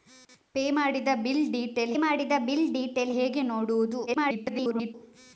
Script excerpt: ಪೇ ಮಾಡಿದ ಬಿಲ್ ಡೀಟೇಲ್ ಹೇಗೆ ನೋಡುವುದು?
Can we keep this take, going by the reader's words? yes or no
no